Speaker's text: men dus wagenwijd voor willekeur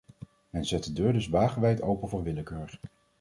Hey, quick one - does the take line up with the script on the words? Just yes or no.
no